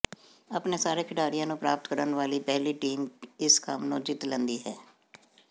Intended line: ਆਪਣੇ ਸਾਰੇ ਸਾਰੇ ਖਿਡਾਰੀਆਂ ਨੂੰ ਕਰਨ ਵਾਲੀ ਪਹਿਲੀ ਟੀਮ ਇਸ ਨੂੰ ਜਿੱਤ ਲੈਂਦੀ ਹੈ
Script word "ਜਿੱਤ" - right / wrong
right